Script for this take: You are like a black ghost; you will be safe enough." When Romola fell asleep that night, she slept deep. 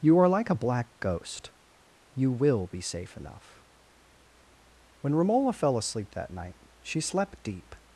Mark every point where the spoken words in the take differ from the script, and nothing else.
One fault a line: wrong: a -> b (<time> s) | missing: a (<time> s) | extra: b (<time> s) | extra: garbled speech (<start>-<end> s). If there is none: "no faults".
no faults